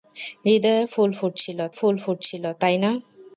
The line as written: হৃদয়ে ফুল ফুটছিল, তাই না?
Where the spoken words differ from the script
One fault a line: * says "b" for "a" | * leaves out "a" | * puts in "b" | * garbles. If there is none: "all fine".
* puts in "ফুল ফুটছিল"